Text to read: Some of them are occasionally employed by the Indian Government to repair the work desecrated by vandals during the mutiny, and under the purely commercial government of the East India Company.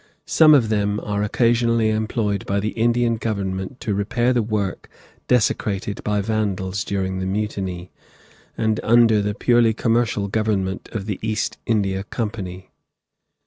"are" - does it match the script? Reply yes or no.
yes